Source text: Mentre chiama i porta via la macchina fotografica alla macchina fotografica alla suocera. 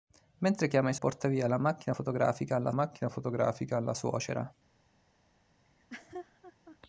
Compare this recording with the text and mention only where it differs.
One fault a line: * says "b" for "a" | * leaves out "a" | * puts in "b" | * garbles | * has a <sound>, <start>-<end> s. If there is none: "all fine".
* has a laugh, 5.6-6.8 s